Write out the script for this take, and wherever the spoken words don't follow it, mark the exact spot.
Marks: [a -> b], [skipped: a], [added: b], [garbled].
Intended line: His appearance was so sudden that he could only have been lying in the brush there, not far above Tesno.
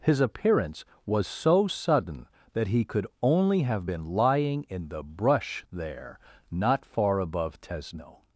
His appearance was so sudden that he could only have been lying in the brush there, not far above Tesno.